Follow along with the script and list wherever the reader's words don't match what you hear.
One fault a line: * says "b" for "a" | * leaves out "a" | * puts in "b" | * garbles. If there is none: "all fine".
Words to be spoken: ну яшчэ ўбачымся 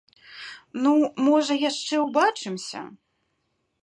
* puts in "можа"